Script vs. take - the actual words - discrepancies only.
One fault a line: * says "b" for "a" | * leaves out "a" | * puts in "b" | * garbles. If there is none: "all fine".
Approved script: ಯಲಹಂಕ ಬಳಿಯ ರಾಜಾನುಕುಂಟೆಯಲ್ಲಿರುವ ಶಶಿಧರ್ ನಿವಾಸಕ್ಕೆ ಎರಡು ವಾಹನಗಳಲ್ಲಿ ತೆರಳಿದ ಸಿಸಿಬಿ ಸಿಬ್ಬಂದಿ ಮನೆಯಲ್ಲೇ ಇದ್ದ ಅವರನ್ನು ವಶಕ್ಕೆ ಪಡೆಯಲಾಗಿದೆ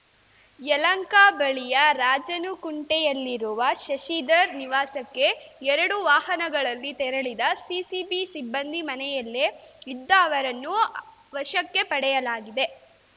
all fine